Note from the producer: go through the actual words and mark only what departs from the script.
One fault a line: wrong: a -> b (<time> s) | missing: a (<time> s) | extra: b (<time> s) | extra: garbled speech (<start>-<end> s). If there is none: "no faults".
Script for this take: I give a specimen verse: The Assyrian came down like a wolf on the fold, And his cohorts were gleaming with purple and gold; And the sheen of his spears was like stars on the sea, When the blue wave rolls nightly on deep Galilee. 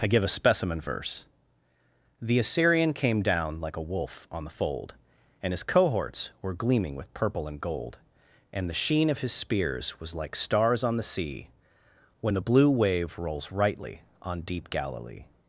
wrong: nightly -> rightly (13.5 s)